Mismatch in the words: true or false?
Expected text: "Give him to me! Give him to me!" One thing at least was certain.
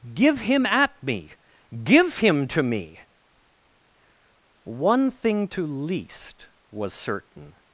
true